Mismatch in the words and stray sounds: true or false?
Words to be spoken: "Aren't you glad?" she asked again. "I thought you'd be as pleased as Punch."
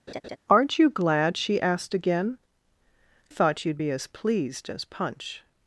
true